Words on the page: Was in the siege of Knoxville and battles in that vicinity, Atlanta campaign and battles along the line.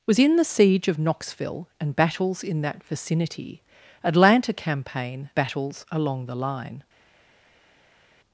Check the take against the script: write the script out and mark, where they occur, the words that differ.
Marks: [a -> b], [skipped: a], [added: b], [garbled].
Was in the siege of Knoxville and battles in that vicinity, Atlanta campaign [skipped: and] battles along the line.